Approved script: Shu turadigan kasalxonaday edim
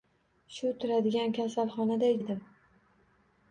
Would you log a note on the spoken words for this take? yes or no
no